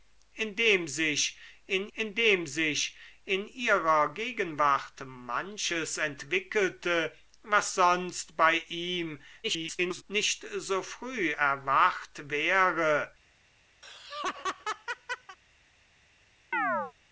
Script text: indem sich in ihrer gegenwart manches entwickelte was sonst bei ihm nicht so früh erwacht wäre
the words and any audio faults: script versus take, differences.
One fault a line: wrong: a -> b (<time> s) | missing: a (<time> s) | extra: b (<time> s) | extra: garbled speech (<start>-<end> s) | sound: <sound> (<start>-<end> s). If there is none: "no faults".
extra: indem sich in (1.9 s)
extra: garbled speech (9.4-10.0 s)
sound: laugh (13.8-15.4 s)
sound: chirp (16.5-16.9 s)